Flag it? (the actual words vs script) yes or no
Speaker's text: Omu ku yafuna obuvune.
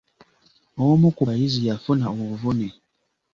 yes